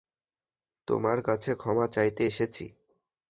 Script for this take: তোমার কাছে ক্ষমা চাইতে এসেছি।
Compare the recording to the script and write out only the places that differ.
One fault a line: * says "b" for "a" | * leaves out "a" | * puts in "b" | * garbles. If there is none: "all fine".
all fine